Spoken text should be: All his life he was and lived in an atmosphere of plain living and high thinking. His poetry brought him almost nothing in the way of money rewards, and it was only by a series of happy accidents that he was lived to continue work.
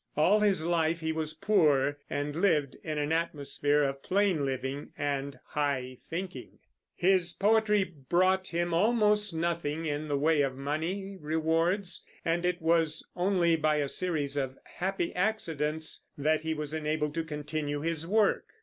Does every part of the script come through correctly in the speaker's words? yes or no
no